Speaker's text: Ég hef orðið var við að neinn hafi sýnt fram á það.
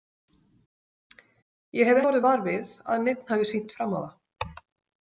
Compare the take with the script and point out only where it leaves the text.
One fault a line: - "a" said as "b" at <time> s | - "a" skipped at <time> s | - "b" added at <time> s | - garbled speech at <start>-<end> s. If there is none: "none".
none